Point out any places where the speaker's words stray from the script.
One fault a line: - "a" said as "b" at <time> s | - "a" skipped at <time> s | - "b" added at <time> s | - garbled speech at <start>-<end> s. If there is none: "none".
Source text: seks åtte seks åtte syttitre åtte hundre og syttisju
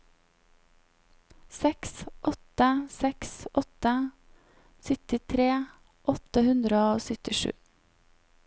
none